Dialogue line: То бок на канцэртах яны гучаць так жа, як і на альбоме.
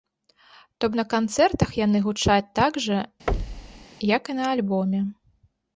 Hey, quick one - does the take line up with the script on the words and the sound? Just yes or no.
no